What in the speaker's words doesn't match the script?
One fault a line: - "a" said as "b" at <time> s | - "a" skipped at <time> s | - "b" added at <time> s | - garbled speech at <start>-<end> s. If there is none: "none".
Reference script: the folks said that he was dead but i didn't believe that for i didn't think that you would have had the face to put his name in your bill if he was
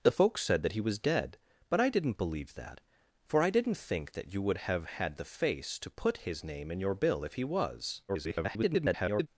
- garbled speech at 8.1-9.3 s